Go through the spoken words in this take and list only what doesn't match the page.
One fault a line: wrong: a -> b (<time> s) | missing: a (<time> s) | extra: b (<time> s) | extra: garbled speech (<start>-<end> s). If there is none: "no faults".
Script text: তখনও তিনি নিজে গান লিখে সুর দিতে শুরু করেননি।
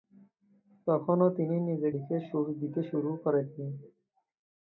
missing: গান (1.9 s)